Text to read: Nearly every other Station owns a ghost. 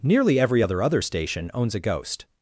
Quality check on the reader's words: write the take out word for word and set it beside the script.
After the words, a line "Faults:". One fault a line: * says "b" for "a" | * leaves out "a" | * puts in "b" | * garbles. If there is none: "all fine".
Nearly every other other Station owns a ghost.
Faults:
* puts in "other"